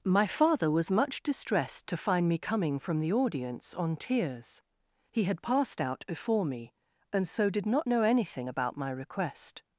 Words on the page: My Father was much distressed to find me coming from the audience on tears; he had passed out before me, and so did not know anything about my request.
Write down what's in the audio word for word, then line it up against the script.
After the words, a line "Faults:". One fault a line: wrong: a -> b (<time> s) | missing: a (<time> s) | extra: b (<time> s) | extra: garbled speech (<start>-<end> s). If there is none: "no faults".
My Father was much distressed to find me coming from the audience on tears; he had passed out before me, and so did not know anything about my request.
Faults:
no faults